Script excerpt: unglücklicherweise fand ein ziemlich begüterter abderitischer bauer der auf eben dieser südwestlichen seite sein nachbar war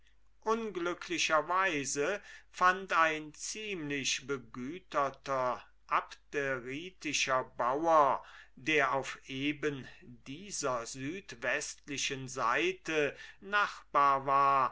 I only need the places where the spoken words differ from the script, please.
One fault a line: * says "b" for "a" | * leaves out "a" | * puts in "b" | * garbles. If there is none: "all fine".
* leaves out "sein"